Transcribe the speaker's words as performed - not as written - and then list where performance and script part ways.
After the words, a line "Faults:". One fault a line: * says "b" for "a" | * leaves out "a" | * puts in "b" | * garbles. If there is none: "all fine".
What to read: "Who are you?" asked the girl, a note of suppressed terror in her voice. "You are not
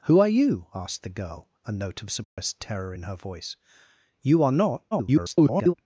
"Who are you?" asked the girl, a note of suppressed terror in her voice. "You are not [garbled]
Faults:
* garbles